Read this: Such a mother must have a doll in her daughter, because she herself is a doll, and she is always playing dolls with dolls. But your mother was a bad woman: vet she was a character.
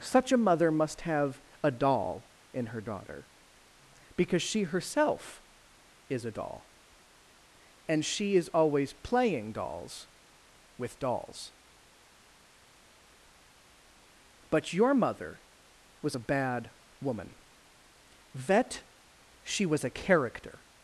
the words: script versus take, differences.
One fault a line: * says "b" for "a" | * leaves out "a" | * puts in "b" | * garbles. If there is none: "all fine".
all fine